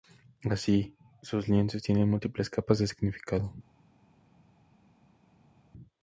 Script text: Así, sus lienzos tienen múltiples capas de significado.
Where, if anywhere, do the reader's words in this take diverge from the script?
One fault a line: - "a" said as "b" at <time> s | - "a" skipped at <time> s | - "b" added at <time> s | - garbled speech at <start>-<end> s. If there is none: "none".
none